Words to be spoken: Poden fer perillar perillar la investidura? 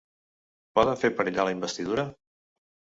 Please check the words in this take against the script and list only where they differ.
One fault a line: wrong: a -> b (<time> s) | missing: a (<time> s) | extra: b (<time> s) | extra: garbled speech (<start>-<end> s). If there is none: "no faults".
missing: perillar (1.5 s)